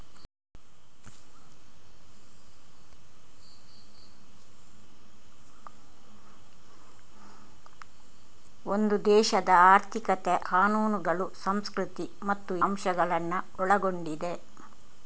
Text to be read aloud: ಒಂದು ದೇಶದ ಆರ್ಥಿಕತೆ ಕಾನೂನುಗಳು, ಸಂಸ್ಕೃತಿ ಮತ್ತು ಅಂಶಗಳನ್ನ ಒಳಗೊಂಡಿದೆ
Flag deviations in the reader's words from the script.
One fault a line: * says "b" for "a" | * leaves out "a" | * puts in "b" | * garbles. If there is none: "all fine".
all fine